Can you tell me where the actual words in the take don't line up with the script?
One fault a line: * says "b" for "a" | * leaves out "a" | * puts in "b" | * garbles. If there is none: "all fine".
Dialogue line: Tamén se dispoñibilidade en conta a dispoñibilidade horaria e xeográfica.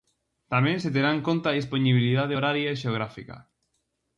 * says "terá" for "dispoñibilidade"